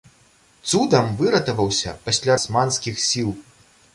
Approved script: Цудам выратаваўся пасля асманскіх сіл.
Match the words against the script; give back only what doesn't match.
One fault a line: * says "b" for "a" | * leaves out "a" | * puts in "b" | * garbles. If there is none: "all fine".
all fine